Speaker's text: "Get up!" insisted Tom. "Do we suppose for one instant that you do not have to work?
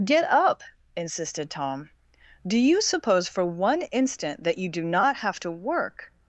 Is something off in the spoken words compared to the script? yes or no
yes